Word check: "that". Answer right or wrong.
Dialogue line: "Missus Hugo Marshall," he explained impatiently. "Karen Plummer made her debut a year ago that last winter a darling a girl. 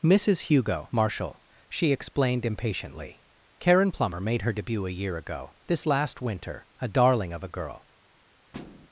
wrong